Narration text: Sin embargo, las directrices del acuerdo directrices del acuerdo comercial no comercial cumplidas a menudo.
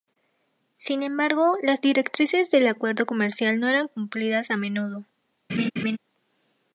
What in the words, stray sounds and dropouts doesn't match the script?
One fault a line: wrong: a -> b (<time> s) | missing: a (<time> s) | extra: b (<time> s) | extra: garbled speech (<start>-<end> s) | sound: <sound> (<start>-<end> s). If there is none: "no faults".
missing: directrices del acuerdo (3.0 s)
wrong: comercial -> eran (3.7 s)
sound: laugh (5.5-6.0 s)